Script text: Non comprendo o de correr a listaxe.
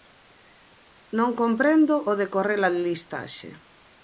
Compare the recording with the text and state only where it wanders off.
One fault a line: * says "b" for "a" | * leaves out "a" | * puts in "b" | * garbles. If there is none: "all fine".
all fine